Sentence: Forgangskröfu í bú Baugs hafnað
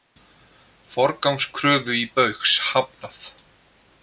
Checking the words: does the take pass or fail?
fail